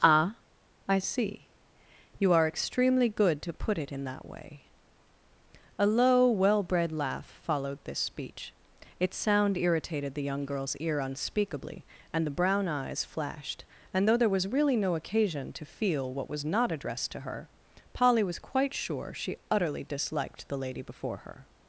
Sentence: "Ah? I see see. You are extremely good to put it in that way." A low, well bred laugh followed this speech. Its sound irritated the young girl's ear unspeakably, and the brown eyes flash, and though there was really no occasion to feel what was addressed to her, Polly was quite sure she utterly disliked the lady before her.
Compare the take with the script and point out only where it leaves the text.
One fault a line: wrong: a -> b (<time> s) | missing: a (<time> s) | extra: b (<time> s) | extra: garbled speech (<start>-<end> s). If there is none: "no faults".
missing: see (1.5 s)
wrong: flash -> flashed (13.1 s)
extra: not (16.5 s)